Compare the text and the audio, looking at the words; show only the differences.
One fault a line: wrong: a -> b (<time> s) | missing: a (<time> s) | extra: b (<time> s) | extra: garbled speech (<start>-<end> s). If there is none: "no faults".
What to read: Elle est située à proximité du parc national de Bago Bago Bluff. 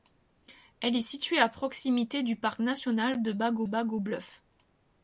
no faults